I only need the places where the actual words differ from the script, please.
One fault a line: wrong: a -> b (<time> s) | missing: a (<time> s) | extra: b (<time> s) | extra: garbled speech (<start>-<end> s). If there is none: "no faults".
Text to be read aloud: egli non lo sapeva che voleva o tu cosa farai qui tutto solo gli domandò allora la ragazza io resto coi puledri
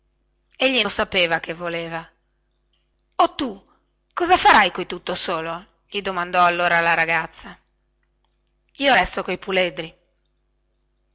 missing: non (0.8 s)